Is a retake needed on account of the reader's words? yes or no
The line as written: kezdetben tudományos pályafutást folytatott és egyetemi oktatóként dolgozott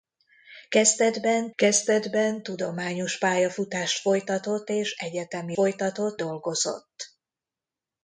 yes